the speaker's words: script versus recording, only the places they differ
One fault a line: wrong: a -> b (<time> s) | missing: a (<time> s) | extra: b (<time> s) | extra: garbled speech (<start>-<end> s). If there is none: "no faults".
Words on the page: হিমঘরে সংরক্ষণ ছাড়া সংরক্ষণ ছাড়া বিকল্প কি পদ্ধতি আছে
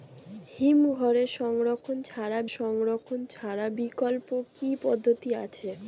no faults